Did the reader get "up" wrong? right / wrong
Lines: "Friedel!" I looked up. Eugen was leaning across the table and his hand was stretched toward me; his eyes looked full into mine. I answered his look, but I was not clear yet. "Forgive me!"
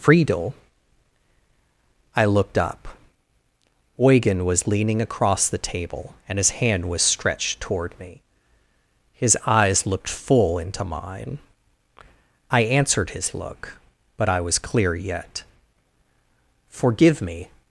right